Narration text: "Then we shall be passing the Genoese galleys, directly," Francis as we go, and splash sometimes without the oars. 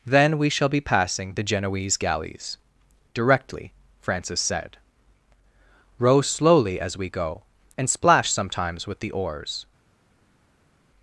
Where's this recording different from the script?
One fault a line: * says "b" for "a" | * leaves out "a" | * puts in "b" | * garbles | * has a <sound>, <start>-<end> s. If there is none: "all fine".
* puts in "said Row slowly"
* says "with" for "without"